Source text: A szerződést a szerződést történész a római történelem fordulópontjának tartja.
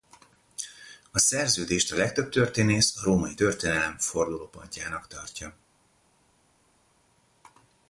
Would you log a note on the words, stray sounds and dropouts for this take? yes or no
yes